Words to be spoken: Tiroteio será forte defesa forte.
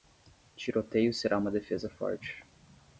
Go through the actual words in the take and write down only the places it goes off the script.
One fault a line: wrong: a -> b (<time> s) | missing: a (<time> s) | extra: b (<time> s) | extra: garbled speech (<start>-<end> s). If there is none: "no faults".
wrong: forte -> uma (1.4 s)